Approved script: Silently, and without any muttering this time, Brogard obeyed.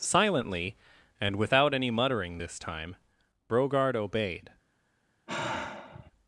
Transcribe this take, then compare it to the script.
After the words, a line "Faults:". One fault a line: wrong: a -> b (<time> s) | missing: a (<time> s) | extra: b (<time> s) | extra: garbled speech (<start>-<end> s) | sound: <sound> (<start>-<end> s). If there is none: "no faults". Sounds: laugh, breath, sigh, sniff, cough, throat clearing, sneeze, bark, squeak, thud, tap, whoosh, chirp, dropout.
Silently, and without any muttering this time, Brogard obeyed.
Faults:
sound: sigh (5.3-6.1 s)